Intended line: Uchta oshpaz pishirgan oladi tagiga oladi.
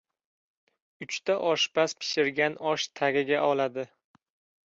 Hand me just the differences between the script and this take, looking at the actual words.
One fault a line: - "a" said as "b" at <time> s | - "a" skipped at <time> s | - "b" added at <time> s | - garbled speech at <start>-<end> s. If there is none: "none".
- "oladi" said as "osh" at 2.7 s